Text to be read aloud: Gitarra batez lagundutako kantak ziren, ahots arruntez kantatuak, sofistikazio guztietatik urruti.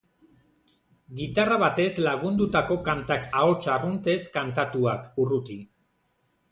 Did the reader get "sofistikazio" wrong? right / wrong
wrong